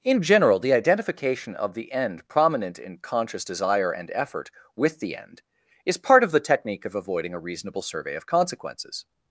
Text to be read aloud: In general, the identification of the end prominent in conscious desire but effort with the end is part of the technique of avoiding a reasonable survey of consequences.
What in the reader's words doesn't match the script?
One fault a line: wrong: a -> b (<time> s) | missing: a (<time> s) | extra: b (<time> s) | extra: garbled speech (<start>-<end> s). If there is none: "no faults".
wrong: but -> and (3.9 s)